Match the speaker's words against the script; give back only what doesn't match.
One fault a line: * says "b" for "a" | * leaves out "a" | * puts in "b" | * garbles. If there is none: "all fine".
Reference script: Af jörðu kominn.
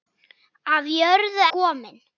all fine